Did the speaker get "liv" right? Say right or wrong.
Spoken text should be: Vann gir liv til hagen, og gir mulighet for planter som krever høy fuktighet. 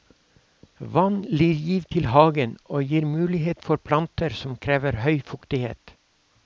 right